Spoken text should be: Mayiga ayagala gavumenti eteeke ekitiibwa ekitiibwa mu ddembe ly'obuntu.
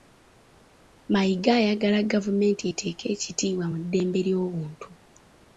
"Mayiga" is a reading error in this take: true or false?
false